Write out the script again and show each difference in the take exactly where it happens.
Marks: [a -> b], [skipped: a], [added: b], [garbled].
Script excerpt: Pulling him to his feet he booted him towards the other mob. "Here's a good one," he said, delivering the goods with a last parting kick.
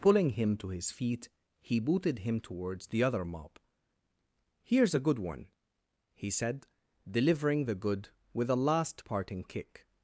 Pulling him to his feet he booted him towards the other mob. "Here's a good one," he said, delivering the [goods -> good] with a last parting kick.